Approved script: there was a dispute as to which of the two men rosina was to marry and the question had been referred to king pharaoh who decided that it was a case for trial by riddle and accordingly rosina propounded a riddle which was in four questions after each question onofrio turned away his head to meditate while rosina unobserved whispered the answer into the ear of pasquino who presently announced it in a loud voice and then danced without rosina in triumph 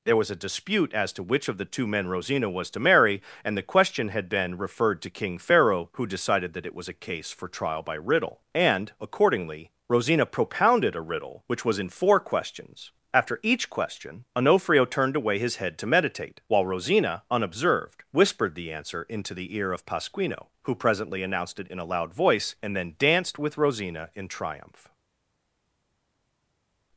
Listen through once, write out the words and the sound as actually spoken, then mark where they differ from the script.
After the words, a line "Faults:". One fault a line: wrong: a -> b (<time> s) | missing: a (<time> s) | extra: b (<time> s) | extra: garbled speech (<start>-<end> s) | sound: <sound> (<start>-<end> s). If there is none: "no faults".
there was a dispute as to which of the two men rosina was to marry and the question had been referred to king pharaoh who decided that it was a case for trial by riddle and accordingly rosina propounded a riddle which was in four questions after each question onofrio turned away his head to meditate while rosina unobserved whispered the answer into the ear of pasquino who presently announced it in a loud voice and then danced with rosina in triumph
Faults:
wrong: without -> with (23.4 s)